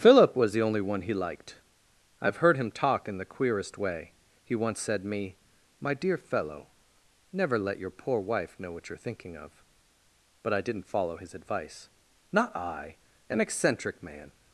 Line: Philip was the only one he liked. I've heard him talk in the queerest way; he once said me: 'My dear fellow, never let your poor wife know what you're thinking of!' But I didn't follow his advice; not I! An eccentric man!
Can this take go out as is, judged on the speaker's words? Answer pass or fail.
pass